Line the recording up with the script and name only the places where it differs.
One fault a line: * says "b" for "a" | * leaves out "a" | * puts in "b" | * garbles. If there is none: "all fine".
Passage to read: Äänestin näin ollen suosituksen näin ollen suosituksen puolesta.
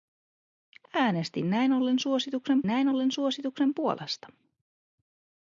all fine